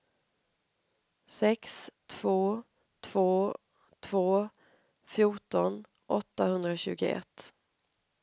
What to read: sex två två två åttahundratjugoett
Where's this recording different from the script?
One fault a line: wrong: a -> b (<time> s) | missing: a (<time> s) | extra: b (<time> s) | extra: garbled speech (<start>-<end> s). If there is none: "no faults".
extra: fjorton (5.0 s)